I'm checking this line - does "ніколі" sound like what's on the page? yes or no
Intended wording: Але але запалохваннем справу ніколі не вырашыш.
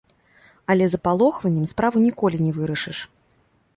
yes